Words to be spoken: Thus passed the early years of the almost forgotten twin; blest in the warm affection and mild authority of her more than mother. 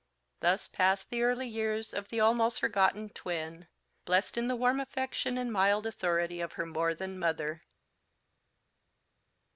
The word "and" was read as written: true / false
true